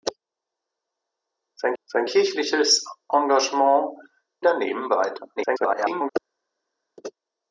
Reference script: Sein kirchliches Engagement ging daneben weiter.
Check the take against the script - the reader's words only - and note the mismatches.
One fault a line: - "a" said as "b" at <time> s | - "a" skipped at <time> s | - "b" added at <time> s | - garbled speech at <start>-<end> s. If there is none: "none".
- "sein" added at 1.8 s
- "ging" skipped at 4.0 s
- garbled speech at 5.4-6.1 s